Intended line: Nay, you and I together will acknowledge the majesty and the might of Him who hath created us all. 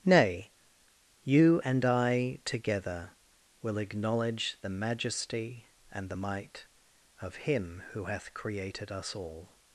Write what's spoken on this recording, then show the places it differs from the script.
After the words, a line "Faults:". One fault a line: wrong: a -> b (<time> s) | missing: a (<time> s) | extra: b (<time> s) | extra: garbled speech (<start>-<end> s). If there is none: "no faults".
Nay, you and I together will acknowledge the majesty and the might of Him who hath created us all.
Faults:
no faults